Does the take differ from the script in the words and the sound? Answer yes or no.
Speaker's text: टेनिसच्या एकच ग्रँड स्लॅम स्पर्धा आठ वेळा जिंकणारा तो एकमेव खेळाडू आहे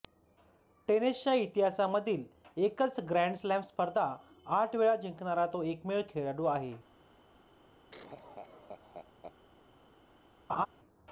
yes